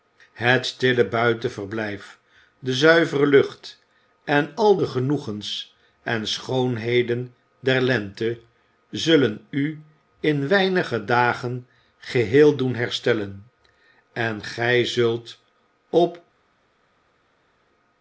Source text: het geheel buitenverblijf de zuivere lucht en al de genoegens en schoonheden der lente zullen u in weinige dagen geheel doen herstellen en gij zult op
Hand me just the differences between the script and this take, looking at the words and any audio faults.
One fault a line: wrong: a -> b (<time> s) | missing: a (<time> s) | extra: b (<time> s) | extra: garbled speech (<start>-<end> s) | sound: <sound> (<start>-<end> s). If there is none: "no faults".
wrong: geheel -> stille (0.6 s)